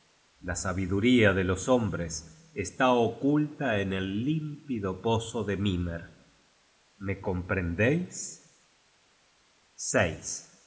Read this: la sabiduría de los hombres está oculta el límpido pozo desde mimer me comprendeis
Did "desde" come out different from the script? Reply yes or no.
yes